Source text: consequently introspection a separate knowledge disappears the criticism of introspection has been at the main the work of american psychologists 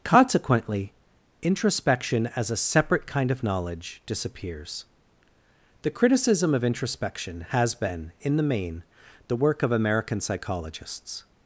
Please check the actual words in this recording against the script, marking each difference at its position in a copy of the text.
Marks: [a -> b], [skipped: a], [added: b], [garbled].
consequently introspection [added: as] a separate [added: kind of] knowledge disappears the criticism of introspection has been [at -> in] the main the work of american psychologists